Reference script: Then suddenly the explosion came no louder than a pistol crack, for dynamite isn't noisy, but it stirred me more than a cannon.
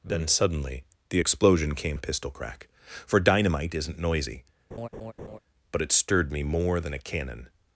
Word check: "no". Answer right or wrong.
wrong